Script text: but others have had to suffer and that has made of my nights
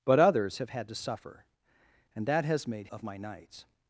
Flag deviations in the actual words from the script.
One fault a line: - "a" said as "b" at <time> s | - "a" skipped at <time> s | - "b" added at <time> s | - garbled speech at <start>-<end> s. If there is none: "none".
none